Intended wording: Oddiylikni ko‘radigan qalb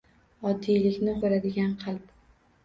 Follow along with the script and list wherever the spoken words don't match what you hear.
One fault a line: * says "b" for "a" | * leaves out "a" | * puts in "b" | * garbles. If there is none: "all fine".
all fine